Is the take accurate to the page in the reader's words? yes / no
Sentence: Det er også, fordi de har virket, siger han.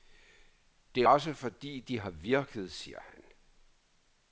yes